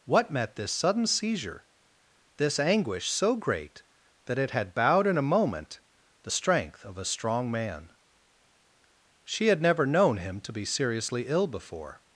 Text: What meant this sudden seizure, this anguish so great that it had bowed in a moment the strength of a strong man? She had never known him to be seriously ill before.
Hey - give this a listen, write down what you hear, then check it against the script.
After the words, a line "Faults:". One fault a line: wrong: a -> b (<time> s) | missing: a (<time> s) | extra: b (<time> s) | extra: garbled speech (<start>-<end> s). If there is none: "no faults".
What met this sudden seizure, this anguish so great that it had bowed in a moment the strength of a strong man? She had never known him to be seriously ill before.
Faults:
wrong: meant -> met (0.3 s)